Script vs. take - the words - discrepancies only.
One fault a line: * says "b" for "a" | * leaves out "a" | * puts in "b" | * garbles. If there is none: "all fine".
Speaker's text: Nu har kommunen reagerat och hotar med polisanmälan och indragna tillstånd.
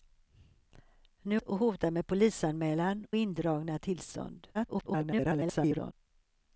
* leaves out "har kommunen reagerat"
* leaves out "och"
* garbles